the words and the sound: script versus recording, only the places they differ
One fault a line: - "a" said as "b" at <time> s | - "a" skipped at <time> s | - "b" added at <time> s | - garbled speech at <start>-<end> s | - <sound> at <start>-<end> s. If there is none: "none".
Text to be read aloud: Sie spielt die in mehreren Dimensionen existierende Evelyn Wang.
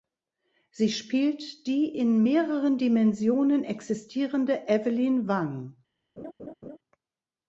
- laugh at 6.2-6.8 s